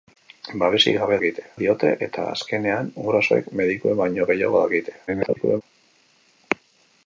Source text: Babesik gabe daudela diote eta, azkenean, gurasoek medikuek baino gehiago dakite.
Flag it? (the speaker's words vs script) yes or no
yes